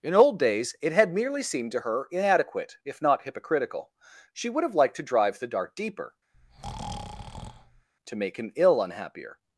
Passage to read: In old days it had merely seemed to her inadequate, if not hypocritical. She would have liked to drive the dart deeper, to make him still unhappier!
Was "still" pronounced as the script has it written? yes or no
no